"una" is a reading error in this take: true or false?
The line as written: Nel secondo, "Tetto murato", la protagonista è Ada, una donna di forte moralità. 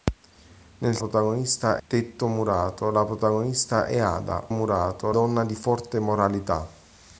true